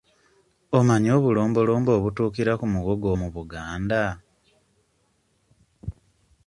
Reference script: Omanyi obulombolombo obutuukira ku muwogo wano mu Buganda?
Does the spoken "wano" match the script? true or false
false